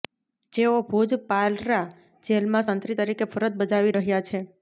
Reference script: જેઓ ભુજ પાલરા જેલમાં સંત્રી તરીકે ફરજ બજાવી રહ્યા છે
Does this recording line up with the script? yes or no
yes